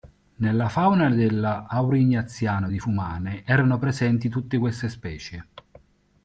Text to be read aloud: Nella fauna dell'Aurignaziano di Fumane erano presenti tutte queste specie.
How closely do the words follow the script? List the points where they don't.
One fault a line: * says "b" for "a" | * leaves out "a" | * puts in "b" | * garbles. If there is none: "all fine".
all fine